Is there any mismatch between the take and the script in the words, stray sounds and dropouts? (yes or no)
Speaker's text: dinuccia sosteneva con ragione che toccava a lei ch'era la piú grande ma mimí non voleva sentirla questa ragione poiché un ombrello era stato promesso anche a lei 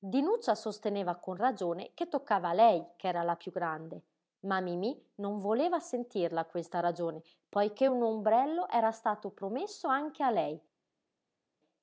no